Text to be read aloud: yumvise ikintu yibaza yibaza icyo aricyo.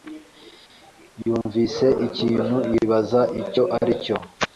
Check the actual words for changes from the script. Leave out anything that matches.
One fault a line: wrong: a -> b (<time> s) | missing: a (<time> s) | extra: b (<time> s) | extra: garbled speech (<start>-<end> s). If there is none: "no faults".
missing: yibaza (3.2 s)